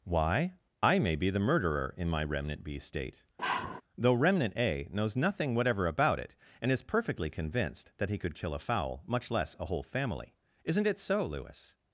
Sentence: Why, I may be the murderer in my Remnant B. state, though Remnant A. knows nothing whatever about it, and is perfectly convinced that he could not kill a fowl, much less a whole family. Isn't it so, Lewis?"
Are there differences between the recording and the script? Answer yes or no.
yes